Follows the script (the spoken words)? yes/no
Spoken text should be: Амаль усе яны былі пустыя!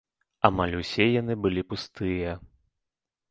yes